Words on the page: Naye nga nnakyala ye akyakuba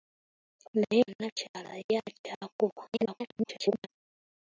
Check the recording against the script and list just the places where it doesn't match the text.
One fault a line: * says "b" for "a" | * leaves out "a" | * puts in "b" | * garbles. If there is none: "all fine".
* leaves out "nga"
* garbles